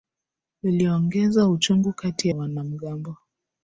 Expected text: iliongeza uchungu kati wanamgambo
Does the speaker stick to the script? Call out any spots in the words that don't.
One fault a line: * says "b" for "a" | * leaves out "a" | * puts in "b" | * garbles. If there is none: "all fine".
all fine